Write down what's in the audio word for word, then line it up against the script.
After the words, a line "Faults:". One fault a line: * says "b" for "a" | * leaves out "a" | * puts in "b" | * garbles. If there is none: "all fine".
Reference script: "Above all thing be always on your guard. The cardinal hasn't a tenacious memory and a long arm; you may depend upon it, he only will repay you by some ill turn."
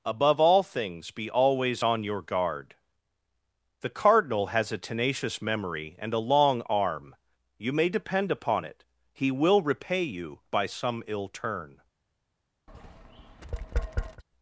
"Above all things be always on your guard. The cardinal has a tenacious memory and a long arm; you may depend upon it, he will repay you by some ill turn."
Faults:
* says "things" for "thing"
* says "has" for "hasn't"
* leaves out "only"